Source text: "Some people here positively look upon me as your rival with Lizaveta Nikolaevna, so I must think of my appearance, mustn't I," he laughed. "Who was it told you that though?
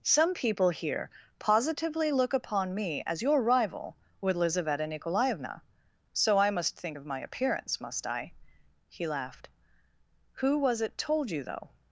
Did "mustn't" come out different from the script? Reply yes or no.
yes